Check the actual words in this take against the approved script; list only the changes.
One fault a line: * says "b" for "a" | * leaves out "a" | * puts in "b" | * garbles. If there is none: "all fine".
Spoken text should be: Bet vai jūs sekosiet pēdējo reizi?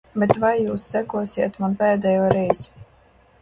* puts in "man"